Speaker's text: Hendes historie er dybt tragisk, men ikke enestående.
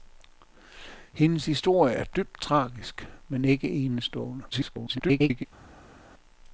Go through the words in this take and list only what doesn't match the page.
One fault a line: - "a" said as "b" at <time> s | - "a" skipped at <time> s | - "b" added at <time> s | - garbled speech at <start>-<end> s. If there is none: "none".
- garbled speech at 4.5-5.4 s